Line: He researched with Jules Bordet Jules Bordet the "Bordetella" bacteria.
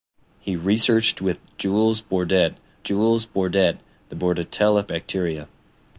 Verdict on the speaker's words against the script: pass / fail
pass